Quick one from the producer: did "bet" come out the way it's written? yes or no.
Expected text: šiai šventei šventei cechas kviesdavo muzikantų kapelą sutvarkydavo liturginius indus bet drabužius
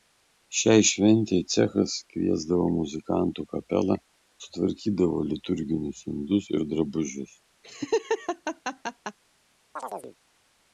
no